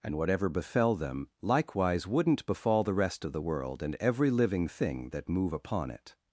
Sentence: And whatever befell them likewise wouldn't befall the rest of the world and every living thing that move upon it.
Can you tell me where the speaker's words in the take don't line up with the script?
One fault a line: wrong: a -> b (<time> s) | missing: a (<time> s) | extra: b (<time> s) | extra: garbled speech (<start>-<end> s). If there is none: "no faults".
no faults